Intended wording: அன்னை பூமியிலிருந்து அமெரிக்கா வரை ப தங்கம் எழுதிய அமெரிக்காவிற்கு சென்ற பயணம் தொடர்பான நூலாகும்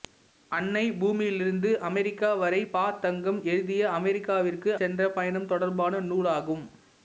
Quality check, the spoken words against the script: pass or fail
pass